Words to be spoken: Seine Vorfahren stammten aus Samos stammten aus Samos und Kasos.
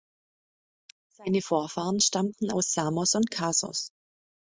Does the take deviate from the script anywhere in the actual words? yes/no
yes